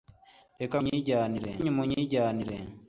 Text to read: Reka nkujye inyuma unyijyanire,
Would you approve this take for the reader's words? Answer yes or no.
no